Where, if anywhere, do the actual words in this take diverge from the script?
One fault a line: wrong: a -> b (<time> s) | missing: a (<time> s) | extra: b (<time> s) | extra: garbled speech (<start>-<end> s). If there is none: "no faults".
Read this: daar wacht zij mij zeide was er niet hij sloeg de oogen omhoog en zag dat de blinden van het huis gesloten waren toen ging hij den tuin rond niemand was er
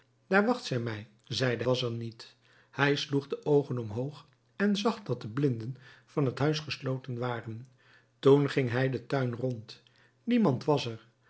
no faults